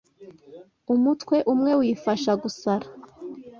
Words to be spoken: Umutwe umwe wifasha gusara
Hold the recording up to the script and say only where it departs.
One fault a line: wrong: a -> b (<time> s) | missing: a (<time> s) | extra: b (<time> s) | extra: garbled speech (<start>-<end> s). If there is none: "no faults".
no faults